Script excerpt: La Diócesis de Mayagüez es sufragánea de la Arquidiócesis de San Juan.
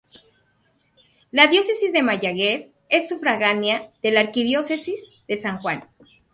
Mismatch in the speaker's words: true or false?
false